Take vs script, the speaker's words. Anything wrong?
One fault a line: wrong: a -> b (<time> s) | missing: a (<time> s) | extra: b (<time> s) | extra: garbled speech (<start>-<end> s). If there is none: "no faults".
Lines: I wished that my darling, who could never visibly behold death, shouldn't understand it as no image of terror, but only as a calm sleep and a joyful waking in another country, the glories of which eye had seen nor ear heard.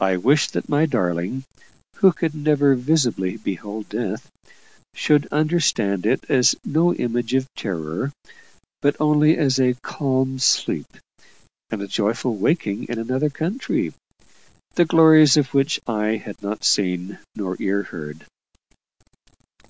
wrong: shouldn't -> should (5.0 s)
extra: not (16.4 s)